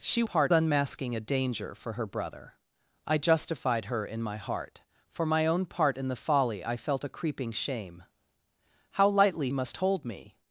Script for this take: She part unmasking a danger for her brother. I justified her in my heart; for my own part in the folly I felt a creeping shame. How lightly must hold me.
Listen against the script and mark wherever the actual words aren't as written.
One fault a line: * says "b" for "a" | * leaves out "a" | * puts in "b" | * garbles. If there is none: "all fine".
all fine